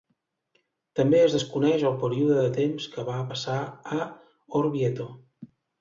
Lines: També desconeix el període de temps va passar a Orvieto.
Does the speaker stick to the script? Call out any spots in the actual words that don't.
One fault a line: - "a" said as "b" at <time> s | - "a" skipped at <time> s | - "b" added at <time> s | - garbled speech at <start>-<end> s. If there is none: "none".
- "es" added at 1.2 s
- "que" added at 3.0 s